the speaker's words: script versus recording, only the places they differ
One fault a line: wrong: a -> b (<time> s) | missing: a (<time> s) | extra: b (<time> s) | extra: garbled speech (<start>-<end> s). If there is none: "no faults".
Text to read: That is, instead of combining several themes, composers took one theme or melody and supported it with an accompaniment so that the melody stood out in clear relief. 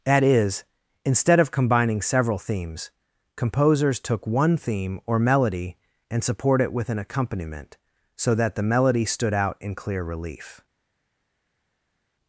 wrong: supported -> support (6.2 s)